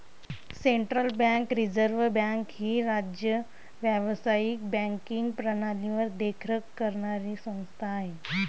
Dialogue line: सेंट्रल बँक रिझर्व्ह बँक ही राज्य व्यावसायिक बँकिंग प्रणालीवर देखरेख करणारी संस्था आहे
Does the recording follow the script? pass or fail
pass